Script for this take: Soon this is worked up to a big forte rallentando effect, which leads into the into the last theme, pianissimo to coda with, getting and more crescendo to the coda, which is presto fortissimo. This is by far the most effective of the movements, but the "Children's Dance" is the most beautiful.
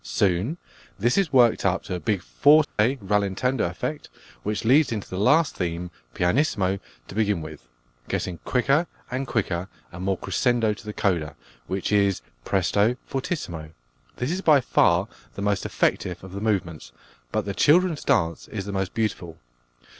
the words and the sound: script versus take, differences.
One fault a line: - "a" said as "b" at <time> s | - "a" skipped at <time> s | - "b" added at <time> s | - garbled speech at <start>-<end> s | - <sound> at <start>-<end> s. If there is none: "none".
- dropout at 2.6-2.8 s
- "into the" skipped at 5.2 s
- "coda" said as "begin" at 7.1 s
- "quicker and quicker" added at 8.4 s